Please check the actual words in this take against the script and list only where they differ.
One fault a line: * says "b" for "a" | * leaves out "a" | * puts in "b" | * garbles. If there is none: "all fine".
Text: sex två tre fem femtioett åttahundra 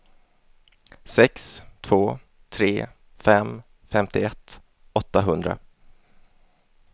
all fine